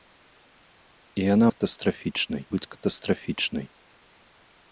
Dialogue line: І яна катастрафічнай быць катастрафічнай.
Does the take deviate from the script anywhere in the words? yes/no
no